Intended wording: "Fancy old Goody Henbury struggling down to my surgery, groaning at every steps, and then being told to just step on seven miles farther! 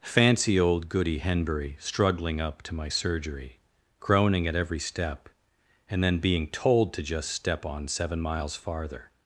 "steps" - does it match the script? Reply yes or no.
no